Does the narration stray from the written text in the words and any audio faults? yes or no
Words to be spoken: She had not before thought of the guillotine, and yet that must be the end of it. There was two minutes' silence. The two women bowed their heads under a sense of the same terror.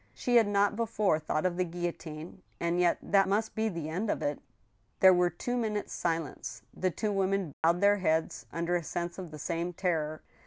yes